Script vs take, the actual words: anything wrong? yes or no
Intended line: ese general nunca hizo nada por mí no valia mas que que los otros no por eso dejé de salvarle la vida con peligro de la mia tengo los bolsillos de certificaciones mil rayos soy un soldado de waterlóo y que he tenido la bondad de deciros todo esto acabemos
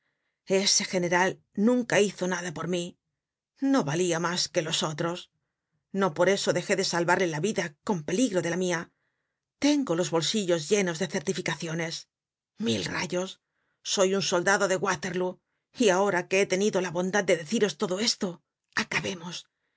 yes